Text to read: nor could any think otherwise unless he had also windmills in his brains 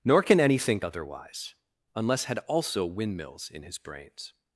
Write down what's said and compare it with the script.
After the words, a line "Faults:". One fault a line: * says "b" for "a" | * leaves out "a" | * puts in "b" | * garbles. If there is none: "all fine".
nor can any think otherwise unless had also windmills in his brains
Faults:
* says "can" for "could"
* leaves out "he"